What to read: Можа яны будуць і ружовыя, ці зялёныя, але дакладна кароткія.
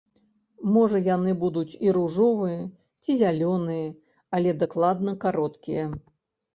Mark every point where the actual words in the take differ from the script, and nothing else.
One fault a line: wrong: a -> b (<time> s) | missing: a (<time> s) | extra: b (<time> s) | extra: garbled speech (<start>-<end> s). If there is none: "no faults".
no faults